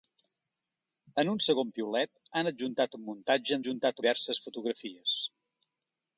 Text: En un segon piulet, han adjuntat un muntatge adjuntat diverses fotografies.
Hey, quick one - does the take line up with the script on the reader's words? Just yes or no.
yes